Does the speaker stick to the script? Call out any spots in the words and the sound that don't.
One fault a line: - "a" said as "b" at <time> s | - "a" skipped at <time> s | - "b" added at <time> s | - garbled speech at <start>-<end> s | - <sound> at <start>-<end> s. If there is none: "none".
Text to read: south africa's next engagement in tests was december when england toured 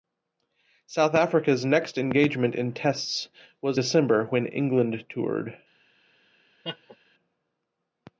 - laugh at 6.6-7.0 s